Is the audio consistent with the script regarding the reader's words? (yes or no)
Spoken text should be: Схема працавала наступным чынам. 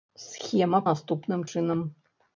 no